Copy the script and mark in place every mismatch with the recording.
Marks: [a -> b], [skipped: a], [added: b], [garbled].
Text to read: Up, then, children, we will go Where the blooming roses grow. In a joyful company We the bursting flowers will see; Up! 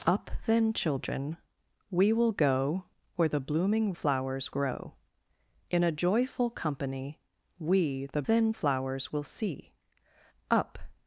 Up, then, children, we will go Where the blooming [roses -> flowers] grow. In a joyful company We the [bursting -> then] flowers will see; Up!